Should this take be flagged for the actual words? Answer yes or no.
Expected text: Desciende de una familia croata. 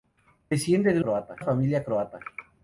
yes